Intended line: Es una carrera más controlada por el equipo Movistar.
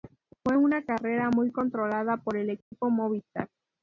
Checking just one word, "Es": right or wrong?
wrong